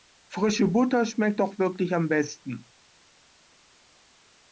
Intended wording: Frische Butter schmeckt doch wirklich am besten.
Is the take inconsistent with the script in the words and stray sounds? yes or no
no